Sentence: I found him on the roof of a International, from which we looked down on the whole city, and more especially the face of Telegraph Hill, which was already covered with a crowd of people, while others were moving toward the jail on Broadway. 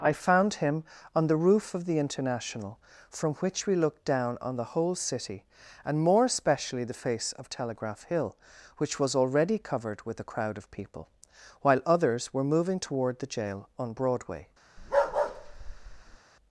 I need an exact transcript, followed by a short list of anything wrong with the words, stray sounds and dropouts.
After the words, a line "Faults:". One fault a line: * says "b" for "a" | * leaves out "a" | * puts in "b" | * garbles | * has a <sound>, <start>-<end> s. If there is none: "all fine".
I found him on the roof of the International, from which we looked down on the whole city, and more especially the face of Telegraph Hill, which was already covered with a crowd of people, while others were moving toward the jail on Broadway.
Faults:
* says "the" for "a"
* has a bark, 14.8-16.2 s